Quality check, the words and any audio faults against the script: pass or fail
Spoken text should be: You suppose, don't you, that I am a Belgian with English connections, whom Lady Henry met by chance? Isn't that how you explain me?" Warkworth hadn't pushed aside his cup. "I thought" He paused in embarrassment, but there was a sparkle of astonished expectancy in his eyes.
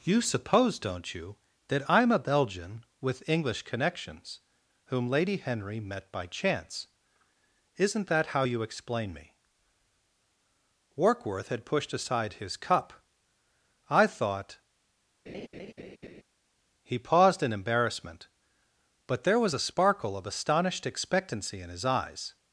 fail